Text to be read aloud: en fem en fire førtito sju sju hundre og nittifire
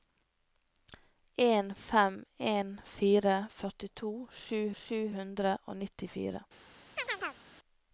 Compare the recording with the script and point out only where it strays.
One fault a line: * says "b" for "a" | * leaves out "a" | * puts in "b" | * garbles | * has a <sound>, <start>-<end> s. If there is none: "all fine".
* has a chirp, 7.0-7.4 s